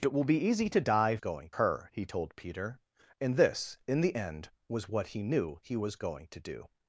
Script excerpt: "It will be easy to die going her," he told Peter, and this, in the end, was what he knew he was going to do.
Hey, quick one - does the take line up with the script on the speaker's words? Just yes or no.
yes